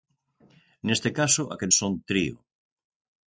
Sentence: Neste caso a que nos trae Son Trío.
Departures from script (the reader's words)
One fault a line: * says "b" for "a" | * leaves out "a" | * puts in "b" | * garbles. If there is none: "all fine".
* leaves out "nos trae"